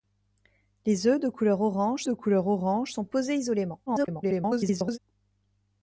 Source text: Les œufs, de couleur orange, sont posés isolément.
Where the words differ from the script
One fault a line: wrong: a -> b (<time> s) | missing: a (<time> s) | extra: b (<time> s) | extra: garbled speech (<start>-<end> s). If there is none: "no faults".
extra: de couleur orange (2.0 s)
extra: garbled speech (3.9-5.0 s)